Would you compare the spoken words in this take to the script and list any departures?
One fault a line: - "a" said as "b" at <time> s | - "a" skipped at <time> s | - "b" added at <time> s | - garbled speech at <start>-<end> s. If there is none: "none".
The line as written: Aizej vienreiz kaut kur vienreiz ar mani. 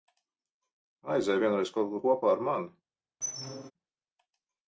- "vienreiz" said as "kopā" at 2.1 s